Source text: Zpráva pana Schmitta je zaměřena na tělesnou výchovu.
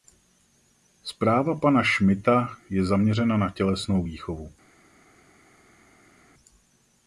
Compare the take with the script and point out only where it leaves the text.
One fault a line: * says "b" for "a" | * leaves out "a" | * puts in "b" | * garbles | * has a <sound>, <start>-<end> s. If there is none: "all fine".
all fine